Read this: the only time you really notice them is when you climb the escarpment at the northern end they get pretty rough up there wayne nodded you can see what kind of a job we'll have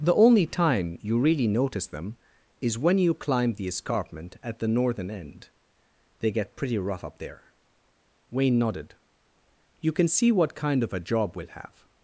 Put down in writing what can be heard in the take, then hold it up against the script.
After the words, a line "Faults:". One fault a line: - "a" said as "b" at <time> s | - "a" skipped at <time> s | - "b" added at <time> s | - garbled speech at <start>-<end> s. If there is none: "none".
the only time you really notice them is when you climb the escarpment at the northern end they get pretty rough up there wayne nodded you can see what kind of a job we'll have
Faults:
none